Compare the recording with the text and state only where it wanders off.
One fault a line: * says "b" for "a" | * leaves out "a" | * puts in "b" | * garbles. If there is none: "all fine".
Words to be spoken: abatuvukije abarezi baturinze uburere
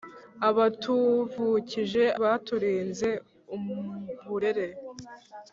* leaves out "abarezi"